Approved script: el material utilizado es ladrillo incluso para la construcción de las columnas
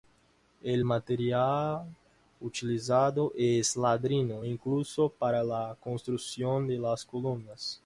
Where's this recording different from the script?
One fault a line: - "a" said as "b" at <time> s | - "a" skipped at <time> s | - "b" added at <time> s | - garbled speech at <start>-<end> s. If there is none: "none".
none